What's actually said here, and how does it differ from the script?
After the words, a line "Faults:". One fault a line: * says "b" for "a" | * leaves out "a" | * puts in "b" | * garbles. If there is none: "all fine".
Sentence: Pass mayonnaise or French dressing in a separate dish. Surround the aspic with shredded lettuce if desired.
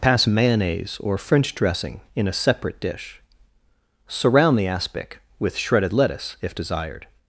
Pass mayonnaise or French dressing in a separate dish. Surround the aspic with shredded lettuce if desired.
Faults:
all fine